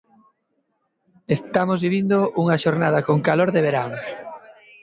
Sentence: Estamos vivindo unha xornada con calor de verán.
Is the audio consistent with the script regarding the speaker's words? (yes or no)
yes